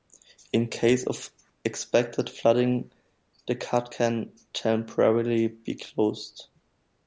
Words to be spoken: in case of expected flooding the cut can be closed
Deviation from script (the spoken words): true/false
true